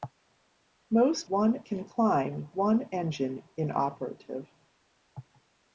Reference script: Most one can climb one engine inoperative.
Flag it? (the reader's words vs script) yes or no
no